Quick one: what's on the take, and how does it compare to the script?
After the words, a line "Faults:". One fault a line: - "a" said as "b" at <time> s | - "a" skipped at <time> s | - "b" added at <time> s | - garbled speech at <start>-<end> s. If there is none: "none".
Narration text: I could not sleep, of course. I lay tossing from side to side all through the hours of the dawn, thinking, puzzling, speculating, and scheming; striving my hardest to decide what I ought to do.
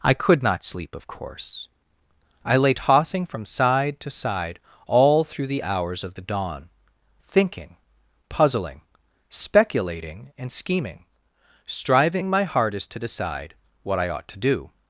I could not sleep, of course. I lay tossing from side to side all through the hours of the dawn, thinking, puzzling, speculating, and scheming; striving my hardest to decide what I ought to do.
Faults:
none